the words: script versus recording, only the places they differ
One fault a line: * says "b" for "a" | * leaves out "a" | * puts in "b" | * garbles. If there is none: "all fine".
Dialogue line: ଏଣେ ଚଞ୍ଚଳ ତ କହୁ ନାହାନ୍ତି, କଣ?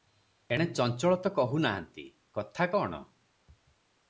* puts in "କଥା"